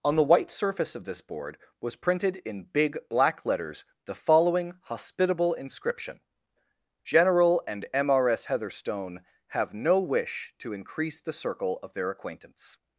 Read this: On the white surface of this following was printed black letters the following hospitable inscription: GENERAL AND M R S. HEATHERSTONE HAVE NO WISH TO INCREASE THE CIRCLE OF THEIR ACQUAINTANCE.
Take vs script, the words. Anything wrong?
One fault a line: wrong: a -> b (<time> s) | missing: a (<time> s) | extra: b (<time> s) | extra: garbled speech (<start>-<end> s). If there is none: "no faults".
wrong: following -> board (1.2 s)
extra: in big (2.4 s)